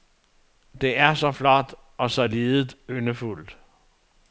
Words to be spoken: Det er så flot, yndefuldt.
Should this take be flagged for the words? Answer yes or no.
yes